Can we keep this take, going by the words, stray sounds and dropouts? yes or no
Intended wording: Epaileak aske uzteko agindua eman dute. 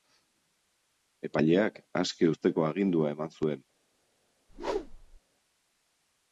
no